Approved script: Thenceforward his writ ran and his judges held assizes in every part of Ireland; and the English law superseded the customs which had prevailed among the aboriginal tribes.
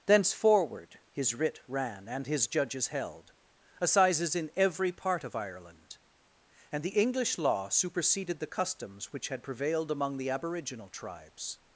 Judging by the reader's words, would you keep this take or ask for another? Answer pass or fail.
pass